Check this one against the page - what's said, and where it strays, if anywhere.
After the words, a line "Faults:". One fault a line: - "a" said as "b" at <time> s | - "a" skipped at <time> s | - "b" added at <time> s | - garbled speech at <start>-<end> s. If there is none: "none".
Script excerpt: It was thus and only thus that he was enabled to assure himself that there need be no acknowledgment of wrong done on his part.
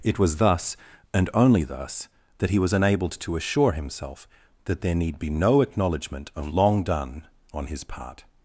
It was thus and only thus that he was enabled to assure himself that there need be no acknowledgment of long done on his part.
Faults:
- "wrong" said as "long" at 6.5 s